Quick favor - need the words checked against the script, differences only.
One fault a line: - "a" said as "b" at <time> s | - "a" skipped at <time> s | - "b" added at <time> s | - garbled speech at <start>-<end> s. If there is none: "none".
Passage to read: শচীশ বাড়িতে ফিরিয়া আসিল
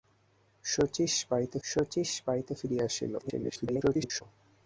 - "শচীশ বাড়িতে" added at 1.6 s
- garbled speech at 3.2-4.2 s